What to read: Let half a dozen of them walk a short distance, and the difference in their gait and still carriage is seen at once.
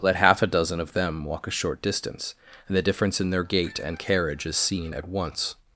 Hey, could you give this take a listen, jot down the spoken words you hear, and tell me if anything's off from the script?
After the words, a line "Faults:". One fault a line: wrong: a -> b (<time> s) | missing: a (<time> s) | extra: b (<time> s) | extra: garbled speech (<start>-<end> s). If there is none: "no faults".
Let half a dozen of them walk a short distance, and the difference in their gait and carriage is seen at once.
Faults:
missing: still (4.0 s)